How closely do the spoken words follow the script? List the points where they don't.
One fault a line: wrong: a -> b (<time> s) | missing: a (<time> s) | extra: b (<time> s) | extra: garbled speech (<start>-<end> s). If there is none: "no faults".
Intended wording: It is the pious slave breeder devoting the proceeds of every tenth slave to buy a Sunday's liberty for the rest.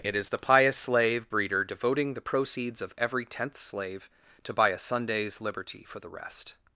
no faults